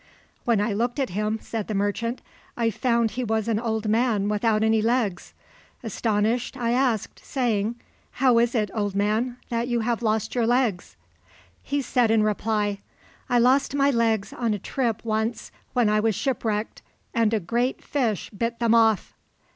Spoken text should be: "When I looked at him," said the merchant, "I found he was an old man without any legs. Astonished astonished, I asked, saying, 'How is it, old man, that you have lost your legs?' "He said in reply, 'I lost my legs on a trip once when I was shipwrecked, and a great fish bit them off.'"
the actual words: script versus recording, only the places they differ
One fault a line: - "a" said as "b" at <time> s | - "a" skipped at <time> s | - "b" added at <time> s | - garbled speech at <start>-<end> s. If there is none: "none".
- "astonished" skipped at 6.6 s